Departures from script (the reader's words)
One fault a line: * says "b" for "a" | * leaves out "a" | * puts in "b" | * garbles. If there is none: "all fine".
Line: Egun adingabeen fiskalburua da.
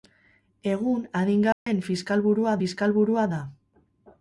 * puts in "fiskalburua"